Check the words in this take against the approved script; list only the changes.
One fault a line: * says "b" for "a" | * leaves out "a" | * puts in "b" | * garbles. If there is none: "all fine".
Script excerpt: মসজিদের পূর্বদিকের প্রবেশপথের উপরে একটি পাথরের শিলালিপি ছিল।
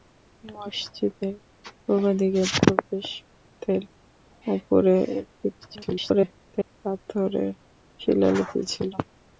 * garbles